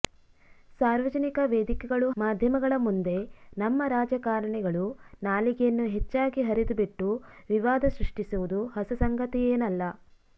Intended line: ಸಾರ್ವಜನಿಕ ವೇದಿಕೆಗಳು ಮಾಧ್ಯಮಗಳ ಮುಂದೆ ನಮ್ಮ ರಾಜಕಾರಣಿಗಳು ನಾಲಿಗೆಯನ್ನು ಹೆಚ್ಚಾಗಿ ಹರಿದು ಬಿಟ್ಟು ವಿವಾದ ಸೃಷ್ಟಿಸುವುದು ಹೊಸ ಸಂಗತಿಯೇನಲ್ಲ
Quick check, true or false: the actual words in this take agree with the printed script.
true